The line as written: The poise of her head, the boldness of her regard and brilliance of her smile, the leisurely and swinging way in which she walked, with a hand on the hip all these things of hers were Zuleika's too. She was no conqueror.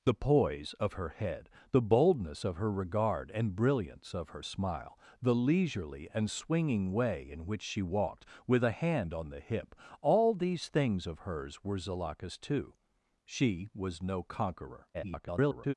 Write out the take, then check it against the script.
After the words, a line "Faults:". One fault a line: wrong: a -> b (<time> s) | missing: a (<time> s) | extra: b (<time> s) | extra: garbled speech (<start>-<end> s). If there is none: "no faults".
The poise of her head, the boldness of her regard and brilliance of her smile, the leisurely and swinging way in which she walked, with a hand on the hip all these things of hers were Zuleika's too. She was no conqueror. [garbled]
Faults:
extra: garbled speech (14.9-15.7 s)